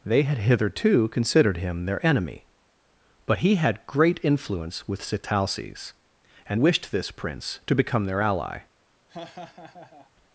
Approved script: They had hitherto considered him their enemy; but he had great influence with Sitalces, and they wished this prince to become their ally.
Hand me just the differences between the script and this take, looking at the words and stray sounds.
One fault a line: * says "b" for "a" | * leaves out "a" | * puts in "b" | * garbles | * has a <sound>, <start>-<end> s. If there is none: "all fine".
* leaves out "they"
* has a laugh, 9.1-10.1 s